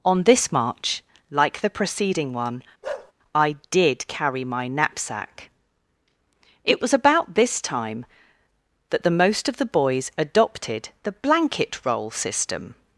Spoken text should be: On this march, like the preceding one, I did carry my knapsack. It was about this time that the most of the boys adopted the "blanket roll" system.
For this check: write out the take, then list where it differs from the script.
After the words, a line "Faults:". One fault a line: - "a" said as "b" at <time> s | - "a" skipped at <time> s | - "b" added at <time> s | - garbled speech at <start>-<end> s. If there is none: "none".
On this march, like the preceding one, I did carry my knapsack. It was about this time that the most of the boys adopted the "blanket roll" system.
Faults:
none